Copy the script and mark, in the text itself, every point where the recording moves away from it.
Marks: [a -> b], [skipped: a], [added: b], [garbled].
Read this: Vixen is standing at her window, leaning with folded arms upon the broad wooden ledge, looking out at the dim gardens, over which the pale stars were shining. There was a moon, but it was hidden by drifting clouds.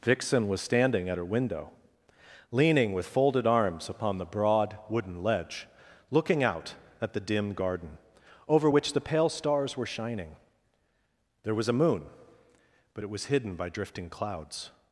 Vixen [is -> was] standing at her window, leaning with folded arms upon the broad wooden ledge, looking out at the dim [gardens, -> garden] over which the pale stars were shining. There was a moon, but it was hidden by drifting clouds.